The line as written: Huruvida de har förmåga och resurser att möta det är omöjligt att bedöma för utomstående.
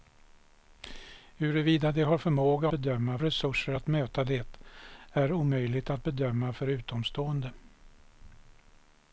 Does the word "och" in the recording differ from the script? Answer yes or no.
yes